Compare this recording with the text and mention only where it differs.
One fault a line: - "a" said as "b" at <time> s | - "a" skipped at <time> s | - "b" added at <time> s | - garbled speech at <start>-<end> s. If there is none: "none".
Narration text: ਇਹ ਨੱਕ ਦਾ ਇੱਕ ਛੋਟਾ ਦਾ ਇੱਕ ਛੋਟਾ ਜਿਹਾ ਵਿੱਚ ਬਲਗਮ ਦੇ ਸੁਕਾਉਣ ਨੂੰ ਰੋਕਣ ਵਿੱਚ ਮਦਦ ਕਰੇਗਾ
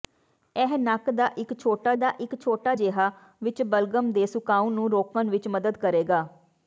none